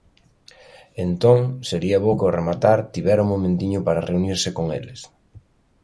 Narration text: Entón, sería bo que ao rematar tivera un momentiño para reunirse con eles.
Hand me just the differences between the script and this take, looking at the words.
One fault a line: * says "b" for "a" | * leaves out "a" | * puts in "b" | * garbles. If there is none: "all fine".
all fine